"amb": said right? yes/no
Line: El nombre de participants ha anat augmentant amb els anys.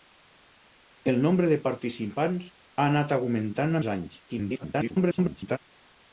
no